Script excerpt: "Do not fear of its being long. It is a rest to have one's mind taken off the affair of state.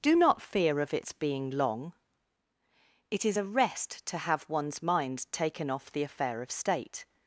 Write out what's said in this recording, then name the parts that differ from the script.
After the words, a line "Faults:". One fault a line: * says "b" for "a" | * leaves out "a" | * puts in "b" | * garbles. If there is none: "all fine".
"Do not fear of its being long. It is a rest to have one's mind taken off the affair of state.
Faults:
all fine